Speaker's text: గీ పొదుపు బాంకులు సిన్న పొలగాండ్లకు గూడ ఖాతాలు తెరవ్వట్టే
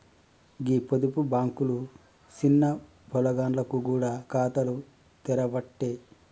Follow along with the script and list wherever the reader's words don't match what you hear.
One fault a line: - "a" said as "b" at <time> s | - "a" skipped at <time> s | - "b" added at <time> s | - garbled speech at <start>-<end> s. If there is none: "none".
none